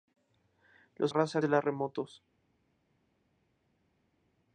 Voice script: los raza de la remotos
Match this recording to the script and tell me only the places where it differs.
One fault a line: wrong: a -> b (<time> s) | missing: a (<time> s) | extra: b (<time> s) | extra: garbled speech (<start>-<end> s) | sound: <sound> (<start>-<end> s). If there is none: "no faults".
no faults